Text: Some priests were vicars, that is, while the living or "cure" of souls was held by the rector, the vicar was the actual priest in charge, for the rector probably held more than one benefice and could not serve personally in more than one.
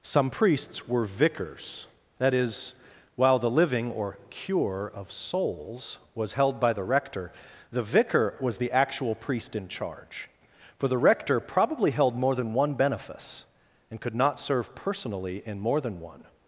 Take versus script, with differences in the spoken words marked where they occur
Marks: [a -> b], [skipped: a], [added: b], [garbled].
Some priests were vicars, that is, while the living or "cure" of souls was held by the rector, the vicar was the actual priest in charge, for the rector probably held more than one benefice and could not serve personally in more than one.